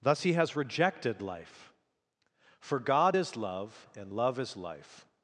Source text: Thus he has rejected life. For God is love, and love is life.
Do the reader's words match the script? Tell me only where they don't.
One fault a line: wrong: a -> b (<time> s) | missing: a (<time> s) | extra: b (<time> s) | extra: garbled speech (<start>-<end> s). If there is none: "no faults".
no faults